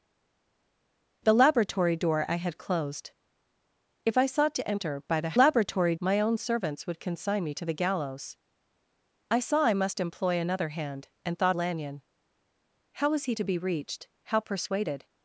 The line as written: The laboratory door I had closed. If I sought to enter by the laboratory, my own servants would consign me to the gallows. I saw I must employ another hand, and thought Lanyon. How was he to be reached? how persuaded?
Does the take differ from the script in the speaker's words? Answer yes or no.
no